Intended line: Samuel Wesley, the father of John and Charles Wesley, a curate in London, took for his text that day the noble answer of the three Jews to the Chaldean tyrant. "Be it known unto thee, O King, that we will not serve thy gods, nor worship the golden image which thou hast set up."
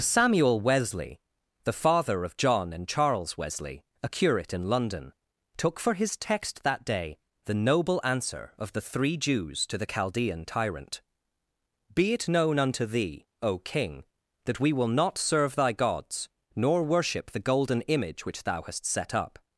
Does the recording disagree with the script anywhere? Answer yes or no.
no